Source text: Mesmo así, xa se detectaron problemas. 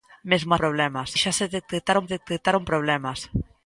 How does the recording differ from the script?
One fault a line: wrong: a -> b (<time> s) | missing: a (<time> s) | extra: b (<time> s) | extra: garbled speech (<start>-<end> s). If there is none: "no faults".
wrong: así -> problemas (0.6 s)
extra: detectaron (2.1 s)